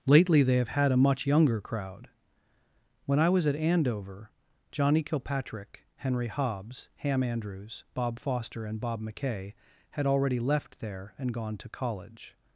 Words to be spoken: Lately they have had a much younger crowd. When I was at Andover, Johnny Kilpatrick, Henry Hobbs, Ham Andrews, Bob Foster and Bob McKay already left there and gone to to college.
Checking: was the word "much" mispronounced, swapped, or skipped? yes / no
no